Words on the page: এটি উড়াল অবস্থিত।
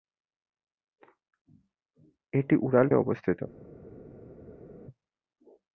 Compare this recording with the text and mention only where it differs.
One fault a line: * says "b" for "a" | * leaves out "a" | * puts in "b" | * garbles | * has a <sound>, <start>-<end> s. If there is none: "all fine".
all fine